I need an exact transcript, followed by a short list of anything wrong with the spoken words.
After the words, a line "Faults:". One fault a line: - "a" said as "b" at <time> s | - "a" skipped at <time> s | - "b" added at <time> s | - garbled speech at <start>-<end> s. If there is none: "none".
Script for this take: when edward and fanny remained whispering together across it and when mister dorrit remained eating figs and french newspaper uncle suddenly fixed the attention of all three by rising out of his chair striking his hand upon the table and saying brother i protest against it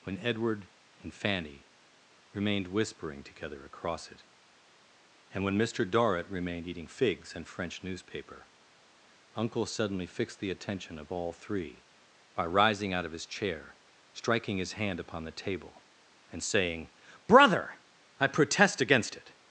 when edward and fanny remained whispering together across it and when mister dorrit remained eating figs and french newspaper uncle suddenly fixed the attention of all three by rising out of his chair striking his hand upon the table and saying brother i protest against it
Faults:
none